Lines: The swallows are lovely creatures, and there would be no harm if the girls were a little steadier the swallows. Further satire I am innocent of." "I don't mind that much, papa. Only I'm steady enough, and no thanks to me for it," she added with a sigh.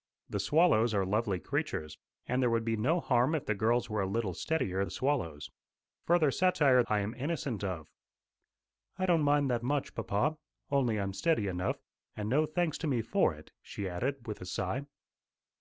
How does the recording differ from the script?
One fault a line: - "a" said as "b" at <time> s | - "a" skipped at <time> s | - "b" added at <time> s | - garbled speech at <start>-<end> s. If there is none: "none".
none